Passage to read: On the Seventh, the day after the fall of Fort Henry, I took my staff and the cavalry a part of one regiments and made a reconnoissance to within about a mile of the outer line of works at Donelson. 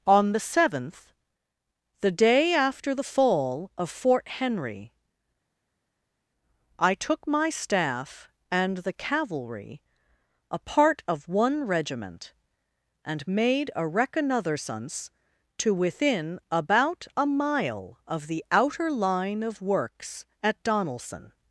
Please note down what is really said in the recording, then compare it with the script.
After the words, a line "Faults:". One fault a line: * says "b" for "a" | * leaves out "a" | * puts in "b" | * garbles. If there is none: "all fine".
On the Seventh, the day after the fall of Fort Henry, I took my staff and the cavalry a part of one regiment and made a reconnoissance to within about a mile of the outer line of works at Donelson.
Faults:
* says "regiment" for "regiments"